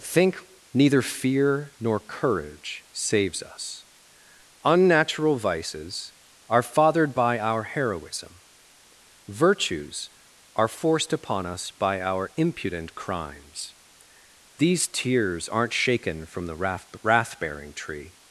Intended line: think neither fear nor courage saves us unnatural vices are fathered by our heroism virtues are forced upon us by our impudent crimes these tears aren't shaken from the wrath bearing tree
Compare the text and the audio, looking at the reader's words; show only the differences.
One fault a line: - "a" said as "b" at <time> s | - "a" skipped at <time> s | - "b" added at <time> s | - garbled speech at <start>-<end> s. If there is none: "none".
none